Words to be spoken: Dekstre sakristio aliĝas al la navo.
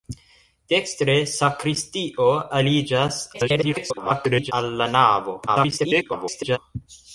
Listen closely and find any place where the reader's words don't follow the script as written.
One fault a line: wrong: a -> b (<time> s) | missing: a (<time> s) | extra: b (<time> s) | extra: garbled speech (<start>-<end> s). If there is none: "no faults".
extra: garbled speech (3.3-4.5 s)
extra: garbled speech (5.5-6.6 s)